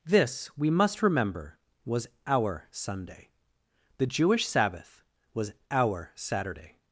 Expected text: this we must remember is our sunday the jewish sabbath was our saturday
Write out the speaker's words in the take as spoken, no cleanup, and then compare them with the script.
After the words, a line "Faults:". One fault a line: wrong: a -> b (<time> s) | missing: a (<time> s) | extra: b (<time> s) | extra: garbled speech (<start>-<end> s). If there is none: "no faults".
this we must remember was our sunday the jewish sabbath was our saturday
Faults:
wrong: is -> was (1.9 s)